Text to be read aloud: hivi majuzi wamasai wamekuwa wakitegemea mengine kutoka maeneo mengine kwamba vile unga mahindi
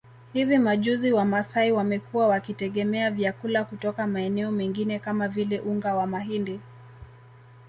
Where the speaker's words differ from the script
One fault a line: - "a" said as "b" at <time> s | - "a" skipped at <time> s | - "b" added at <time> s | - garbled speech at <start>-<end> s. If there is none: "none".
- "mengine" said as "vyakula" at 3.1 s
- "kwamba" said as "kama" at 5.0 s
- "wa" added at 6.0 s